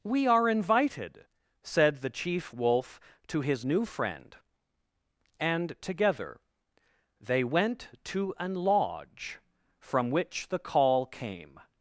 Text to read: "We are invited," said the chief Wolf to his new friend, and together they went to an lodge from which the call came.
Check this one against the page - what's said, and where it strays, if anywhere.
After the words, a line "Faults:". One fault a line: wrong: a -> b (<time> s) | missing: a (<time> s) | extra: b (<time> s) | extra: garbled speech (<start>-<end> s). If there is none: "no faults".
"We are invited," said the chief Wolf to his new friend, and together they went to an lodge from which the call came.
Faults:
no faults